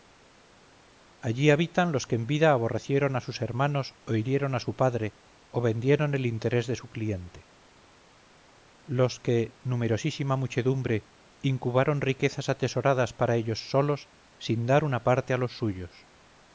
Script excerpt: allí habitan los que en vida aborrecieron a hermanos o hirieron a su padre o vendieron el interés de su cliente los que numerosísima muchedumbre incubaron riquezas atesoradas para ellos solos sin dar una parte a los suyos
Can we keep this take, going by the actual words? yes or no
no